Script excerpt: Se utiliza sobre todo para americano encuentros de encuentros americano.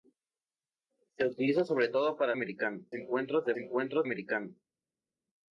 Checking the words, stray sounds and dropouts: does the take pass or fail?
pass